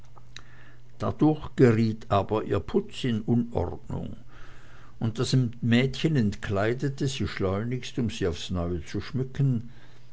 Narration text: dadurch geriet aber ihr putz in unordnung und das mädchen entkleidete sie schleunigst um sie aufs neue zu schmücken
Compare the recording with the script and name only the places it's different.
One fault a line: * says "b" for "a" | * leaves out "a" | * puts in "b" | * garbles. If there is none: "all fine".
all fine